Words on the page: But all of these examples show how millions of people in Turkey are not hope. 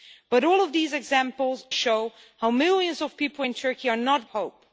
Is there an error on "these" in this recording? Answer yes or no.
no